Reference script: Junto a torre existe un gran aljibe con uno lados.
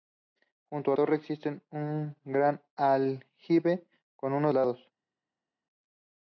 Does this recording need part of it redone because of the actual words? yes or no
no